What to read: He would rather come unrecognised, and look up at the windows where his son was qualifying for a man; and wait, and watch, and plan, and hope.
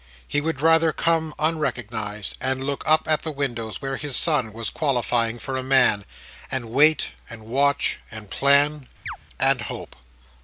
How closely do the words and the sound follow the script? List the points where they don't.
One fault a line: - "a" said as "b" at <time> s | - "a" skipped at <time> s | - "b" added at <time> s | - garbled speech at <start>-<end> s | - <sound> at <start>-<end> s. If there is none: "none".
- chirp at 9.1-9.2 s